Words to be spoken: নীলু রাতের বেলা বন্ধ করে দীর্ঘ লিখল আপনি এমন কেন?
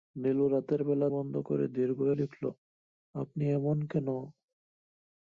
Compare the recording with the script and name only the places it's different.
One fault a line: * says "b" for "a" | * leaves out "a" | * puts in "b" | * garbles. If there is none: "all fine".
all fine